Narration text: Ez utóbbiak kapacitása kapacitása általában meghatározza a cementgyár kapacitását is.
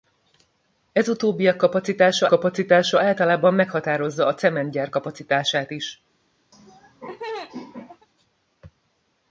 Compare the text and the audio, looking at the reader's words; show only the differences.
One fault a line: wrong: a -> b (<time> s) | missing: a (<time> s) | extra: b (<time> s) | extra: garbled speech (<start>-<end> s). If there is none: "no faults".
no faults